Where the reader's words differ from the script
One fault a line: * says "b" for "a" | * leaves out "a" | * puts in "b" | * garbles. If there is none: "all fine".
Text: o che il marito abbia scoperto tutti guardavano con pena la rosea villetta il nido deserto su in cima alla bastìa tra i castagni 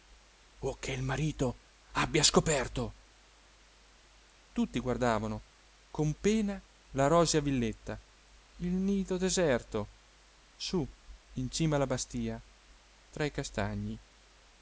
all fine